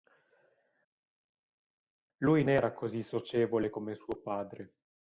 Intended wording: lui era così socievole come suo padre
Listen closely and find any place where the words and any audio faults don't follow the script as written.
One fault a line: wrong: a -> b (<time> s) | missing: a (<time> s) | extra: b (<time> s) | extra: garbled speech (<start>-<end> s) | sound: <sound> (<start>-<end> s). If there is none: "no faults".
no faults